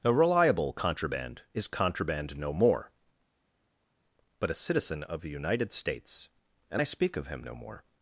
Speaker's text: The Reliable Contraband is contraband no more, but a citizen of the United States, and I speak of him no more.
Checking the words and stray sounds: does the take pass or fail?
fail